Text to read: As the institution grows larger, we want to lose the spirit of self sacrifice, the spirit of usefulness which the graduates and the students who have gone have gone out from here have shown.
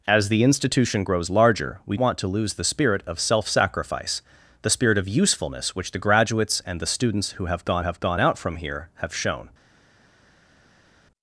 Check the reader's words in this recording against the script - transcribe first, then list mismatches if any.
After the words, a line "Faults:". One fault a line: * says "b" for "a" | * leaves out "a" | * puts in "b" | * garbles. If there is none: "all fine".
As the institution grows larger, we want to lose the spirit of self sacrifice, the spirit of usefulness which the graduates and the students who have gone have gone out from here have shown.
Faults:
all fine